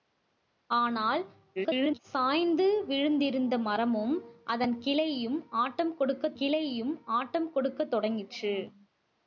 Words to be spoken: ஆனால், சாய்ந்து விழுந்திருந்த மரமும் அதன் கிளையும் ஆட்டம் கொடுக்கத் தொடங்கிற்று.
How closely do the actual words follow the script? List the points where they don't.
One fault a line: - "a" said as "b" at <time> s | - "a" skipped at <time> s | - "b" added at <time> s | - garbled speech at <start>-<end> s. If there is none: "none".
- garbled speech at 1.6-2.0 s
- "கிளையும் ஆட்டம் கொடுக்கத்" added at 6.3 s